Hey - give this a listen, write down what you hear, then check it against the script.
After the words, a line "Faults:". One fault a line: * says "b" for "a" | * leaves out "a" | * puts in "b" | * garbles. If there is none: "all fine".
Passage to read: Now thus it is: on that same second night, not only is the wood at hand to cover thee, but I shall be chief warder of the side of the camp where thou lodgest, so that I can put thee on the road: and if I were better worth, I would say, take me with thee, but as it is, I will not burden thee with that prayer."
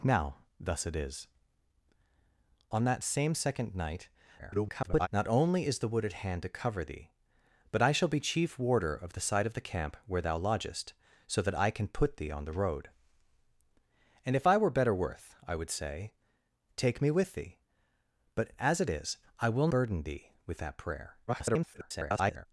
Now thus it is: on that same second night, [garbled] not only is the wood at hand to cover thee, but I shall be chief warder of the side of the camp where thou lodgest, so that I can put thee on the road: and if I were better worth, I would say, take me with thee, but as it is, I will burden thee with that prayer." [garbled]
Faults:
* garbles
* leaves out "not"
* garbles